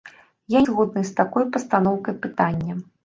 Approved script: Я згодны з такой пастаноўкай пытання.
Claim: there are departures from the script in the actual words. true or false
false